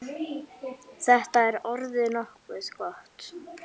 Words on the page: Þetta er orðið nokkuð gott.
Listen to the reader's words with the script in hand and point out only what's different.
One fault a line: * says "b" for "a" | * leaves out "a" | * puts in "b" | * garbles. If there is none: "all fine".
all fine